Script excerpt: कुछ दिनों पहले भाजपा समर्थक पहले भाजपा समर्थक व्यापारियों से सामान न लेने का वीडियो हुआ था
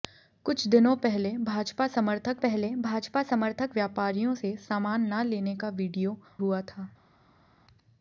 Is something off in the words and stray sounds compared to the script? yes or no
no